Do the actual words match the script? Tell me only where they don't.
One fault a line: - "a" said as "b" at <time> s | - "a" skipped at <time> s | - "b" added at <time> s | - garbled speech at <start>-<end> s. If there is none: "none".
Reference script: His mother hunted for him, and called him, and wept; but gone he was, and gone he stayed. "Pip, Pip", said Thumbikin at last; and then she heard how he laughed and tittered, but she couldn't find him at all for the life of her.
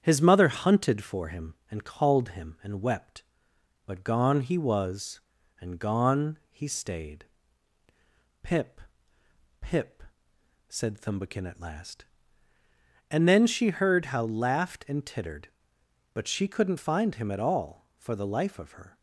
- "he" skipped at 14.2 s